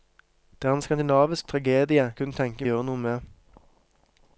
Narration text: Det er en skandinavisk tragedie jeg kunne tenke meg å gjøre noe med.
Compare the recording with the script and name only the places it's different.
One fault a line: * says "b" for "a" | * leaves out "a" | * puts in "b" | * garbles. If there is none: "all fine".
* leaves out "jeg"
* leaves out "meg"